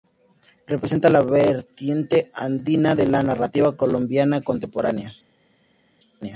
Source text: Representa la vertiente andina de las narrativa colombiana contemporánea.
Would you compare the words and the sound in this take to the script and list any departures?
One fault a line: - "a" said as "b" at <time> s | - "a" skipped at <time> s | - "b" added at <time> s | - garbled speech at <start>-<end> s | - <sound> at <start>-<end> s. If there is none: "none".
- "las" said as "la" at 3.0 s